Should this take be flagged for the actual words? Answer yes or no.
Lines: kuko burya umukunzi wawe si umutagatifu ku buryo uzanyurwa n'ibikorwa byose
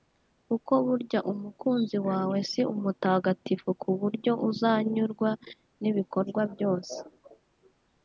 no